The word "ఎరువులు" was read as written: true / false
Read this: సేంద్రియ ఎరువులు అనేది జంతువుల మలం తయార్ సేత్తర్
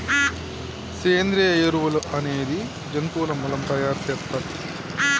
true